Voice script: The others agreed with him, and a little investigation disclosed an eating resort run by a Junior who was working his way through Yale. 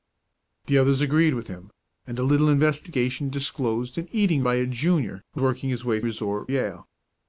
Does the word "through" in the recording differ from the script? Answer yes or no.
yes